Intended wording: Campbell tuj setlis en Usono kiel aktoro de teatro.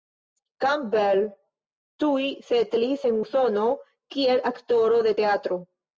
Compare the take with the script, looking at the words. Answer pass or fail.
pass